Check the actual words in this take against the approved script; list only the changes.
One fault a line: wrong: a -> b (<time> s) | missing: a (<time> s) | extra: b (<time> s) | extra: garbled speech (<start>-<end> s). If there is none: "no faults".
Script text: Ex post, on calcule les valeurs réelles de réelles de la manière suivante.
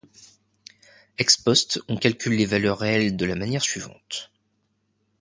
missing: réelles de (3.2 s)